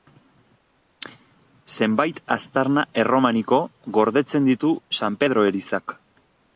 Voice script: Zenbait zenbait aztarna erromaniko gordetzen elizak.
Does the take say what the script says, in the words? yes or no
no